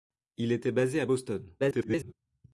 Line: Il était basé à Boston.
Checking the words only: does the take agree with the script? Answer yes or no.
no